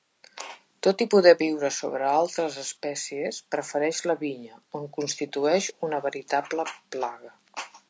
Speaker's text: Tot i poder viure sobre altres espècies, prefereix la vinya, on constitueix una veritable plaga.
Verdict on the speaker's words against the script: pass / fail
pass